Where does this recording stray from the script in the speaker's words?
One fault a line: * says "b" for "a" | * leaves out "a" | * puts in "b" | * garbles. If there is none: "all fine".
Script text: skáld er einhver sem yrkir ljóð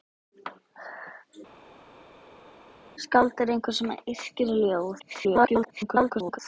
* garbles